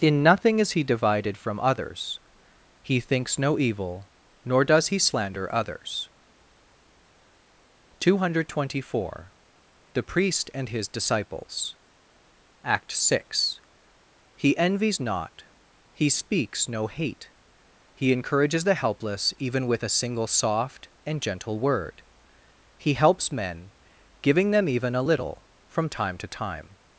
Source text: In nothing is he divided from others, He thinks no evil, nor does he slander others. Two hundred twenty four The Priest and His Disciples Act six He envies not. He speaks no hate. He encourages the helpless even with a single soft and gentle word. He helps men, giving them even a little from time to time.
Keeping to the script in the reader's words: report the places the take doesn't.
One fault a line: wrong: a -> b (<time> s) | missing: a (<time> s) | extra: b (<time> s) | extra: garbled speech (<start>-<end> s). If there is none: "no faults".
no faults